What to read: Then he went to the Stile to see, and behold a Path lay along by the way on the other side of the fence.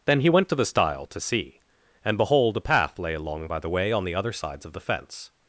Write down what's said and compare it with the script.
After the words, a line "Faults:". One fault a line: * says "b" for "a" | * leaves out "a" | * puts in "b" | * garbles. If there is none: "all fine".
Then he went to the Stile to see, and behold a Path lay along by the way on the other sides of the fence.
Faults:
* says "sides" for "side"